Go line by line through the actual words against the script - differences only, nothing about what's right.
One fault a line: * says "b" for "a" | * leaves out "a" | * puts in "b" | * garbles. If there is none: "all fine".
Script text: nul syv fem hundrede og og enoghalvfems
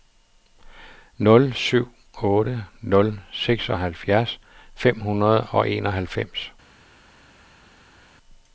* puts in "otte nul seksoghalvfjerds"
* leaves out "og"